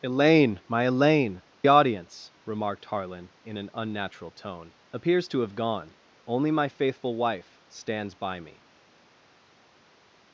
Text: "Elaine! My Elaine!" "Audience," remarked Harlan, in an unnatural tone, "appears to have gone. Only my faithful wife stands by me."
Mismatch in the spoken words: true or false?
false